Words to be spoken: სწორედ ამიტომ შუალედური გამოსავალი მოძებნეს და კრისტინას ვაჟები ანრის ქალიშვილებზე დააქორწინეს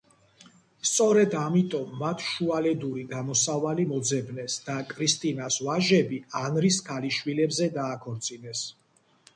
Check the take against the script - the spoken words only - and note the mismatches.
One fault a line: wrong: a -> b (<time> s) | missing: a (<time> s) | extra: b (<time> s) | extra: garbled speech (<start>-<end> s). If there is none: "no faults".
extra: მათ (2.0 s)